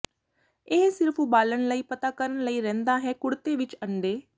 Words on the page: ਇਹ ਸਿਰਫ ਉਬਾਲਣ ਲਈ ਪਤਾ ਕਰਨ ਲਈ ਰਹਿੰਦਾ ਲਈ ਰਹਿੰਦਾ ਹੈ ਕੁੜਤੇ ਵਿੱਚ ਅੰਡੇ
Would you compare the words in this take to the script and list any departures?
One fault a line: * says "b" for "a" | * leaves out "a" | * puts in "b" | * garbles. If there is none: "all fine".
* leaves out "ਲਈ ਰਹਿੰਦਾ"